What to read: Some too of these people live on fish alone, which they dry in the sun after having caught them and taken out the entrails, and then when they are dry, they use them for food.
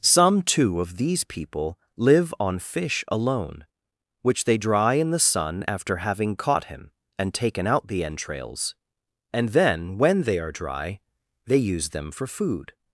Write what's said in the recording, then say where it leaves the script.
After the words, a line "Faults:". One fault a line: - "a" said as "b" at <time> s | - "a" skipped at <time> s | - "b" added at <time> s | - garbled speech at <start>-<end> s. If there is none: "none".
Some too of these people live on fish alone, which they dry in the sun after having caught him and taken out the entrails, and then when they are dry, they use them for food.
Faults:
- "them" said as "him" at 6.6 s